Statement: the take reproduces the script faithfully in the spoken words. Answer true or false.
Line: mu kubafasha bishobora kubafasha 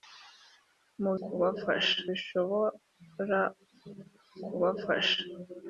true